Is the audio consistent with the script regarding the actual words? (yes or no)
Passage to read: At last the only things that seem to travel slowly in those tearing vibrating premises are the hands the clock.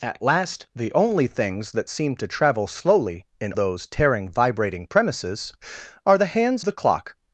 yes